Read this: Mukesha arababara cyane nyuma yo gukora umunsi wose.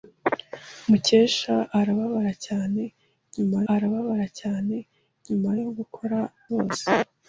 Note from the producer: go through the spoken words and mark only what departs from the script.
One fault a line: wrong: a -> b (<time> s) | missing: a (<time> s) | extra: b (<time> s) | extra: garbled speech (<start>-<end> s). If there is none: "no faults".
extra: arababara cyane nyuma (3.7 s)
missing: umunsi (6.2 s)